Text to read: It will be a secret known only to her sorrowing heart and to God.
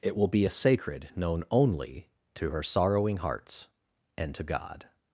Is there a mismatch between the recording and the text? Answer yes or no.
yes